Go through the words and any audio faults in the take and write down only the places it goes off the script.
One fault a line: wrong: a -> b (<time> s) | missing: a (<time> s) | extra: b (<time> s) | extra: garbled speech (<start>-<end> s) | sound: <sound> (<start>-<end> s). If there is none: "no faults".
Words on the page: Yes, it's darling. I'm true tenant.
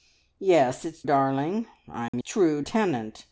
sound: dropout (2.1-2.1 s)